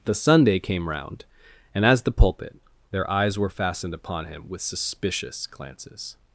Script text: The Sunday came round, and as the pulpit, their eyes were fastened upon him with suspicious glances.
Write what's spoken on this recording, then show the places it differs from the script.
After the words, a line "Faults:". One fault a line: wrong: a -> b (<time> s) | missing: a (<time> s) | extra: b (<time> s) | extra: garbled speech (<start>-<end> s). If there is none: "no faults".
The Sunday came round, and as the pulpit, their eyes were fastened upon him with suspicious glances.
Faults:
no faults